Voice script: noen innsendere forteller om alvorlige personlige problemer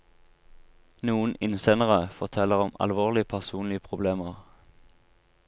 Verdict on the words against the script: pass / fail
pass